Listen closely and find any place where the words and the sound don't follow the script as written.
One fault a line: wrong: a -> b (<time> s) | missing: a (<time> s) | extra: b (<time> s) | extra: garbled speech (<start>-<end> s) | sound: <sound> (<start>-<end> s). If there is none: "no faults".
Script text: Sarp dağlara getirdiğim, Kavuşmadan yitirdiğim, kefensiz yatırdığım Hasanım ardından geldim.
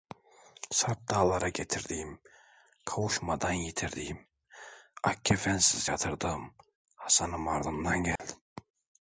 extra: ak (5.0 s)
sound: dropout (8.2-8.2 s)